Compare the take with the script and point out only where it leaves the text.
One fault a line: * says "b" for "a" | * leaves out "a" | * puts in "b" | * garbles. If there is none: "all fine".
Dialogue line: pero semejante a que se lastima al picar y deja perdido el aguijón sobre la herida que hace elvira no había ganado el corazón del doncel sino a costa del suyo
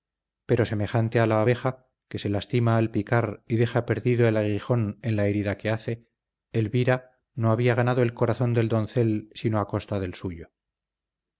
* puts in "la abeja"
* says "en" for "sobre"